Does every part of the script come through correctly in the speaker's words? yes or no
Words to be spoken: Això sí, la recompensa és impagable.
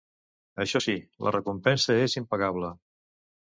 yes